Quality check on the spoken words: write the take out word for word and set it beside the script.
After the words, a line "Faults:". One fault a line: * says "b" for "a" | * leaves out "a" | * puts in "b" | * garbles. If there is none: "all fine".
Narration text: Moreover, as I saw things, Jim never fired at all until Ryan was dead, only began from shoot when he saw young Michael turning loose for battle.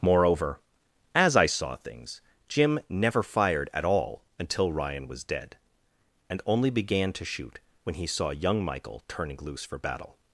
Moreover, as I saw things, Jim never fired at all until Ryan was dead, and only began to shoot when he saw young Michael turning loose for battle.
Faults:
* puts in "and"
* says "to" for "from"